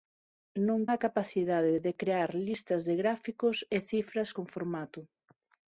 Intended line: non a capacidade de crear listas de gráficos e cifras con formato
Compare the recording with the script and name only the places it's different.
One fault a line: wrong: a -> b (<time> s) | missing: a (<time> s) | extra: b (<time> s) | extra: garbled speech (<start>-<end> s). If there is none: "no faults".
no faults